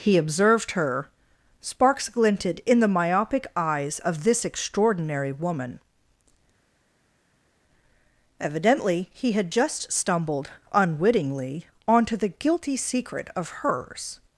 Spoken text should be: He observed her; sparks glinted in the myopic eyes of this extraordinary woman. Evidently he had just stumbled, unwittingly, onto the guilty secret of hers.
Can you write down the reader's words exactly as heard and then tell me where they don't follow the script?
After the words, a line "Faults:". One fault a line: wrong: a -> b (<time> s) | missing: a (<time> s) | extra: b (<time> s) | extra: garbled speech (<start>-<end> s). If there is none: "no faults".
He observed her; sparks glinted in the myopic eyes of this extraordinary woman. Evidently he had just stumbled, unwittingly, onto the guilty secret of hers.
Faults:
no faults